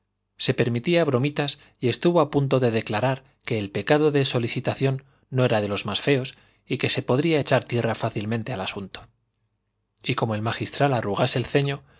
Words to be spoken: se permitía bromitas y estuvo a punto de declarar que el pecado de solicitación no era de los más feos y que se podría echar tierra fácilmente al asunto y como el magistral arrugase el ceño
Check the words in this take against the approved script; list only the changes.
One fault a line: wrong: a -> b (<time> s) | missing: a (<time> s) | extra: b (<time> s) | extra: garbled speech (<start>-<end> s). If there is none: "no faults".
no faults